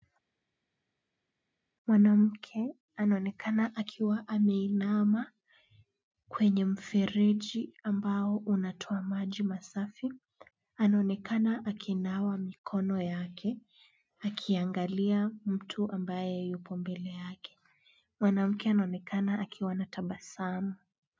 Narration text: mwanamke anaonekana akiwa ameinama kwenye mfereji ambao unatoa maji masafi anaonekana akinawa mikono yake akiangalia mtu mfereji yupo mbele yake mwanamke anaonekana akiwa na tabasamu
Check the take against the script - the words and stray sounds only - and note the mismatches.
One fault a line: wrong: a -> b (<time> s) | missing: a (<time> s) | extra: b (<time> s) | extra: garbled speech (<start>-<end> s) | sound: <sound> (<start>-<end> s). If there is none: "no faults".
wrong: mfereji -> ambaye (15.9 s)